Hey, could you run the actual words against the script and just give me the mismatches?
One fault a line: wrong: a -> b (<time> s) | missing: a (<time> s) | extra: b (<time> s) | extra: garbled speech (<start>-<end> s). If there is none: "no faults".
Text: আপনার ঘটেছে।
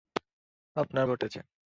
no faults